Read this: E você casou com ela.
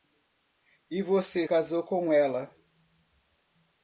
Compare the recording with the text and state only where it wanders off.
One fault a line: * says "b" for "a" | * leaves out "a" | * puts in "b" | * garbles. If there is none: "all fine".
all fine